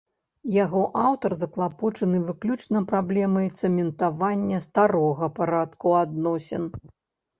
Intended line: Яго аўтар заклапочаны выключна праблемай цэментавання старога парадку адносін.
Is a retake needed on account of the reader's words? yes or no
no